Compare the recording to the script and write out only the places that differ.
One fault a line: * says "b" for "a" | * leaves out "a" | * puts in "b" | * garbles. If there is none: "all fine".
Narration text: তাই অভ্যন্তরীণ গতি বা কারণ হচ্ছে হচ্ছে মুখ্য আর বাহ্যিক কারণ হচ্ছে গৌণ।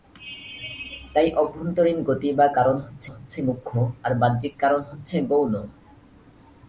all fine